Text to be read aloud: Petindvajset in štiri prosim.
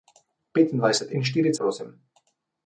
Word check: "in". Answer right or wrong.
right